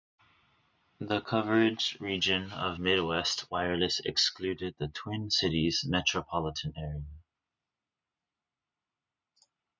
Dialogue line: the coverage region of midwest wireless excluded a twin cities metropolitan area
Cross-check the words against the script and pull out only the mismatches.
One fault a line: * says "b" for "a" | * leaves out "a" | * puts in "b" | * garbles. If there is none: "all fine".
* says "the" for "a"